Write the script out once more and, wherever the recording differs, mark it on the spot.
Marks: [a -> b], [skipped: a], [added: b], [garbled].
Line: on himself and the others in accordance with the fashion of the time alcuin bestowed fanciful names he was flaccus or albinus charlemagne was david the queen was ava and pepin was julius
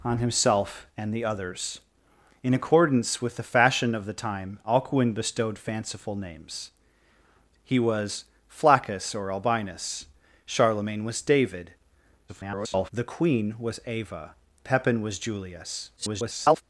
on himself and the others in accordance with the fashion of the time alcuin bestowed fanciful names he was flaccus or albinus charlemagne was david [garbled] the queen was ava [skipped: and] pepin was julius [garbled]